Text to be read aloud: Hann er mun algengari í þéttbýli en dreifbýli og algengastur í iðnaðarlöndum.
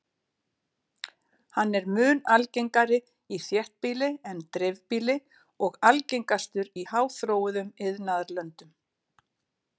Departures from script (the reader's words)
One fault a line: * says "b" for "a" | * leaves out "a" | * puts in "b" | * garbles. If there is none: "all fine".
* puts in "háþróuðum"